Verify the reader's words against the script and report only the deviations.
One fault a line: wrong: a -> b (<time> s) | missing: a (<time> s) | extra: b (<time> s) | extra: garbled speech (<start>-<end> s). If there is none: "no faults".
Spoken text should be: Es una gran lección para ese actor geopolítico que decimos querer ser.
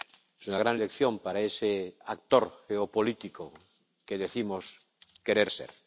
no faults